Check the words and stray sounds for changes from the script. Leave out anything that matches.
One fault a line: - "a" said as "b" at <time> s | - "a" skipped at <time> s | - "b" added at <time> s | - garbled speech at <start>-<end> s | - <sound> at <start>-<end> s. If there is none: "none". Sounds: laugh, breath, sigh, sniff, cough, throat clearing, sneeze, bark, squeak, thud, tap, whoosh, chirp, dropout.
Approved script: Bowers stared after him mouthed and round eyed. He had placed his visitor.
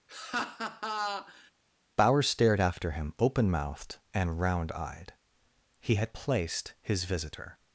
- laugh at 0.1-1.5 s
- "open" added at 3.2 s